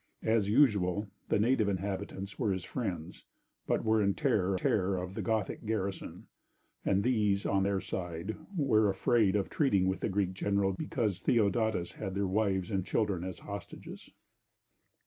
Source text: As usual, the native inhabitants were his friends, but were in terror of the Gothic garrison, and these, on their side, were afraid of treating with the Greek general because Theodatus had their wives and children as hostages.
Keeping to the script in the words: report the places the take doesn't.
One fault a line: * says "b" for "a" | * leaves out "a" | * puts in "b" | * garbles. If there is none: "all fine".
* puts in "terror"